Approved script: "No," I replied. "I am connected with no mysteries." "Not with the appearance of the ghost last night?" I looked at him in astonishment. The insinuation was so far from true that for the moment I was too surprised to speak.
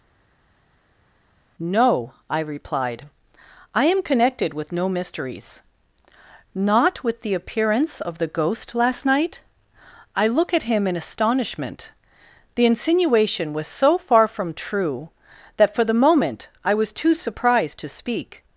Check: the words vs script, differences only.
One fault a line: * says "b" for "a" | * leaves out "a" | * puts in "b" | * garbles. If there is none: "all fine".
* says "look" for "looked"